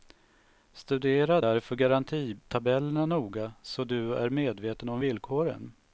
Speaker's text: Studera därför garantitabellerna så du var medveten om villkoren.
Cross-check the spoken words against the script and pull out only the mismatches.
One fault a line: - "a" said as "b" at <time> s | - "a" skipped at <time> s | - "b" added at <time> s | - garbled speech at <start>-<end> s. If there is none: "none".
- "noga" added at 3.0 s
- "var" said as "är" at 4.1 s